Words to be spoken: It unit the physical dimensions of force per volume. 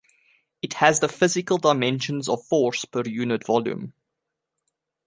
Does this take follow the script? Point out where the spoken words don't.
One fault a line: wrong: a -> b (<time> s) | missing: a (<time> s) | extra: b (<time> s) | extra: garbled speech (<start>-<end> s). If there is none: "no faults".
wrong: unit -> has (0.7 s)
extra: unit (3.0 s)